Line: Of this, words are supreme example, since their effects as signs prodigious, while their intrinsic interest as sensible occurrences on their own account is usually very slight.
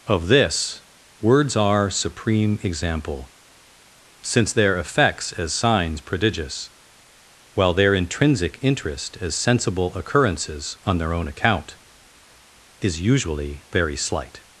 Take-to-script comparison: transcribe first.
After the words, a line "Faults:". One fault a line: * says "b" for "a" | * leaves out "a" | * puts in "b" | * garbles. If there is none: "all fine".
Of this, words are supreme example, since their effects as signs prodigious, while their intrinsic interest as sensible occurrences on their own account is usually very slight.
Faults:
all fine